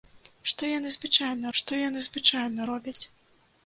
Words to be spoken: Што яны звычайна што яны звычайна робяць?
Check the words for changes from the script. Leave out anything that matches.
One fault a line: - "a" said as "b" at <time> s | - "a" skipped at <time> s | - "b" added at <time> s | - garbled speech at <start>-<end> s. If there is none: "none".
none